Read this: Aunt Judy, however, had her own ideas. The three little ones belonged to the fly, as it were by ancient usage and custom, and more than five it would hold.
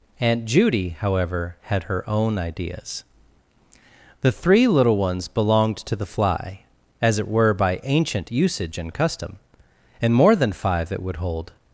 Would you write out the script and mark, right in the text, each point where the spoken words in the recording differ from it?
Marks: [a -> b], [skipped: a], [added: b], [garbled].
Aunt Judy, however, had her own ideas. The three little ones belonged to the fly, as it were by ancient usage and custom, and more than five it would hold.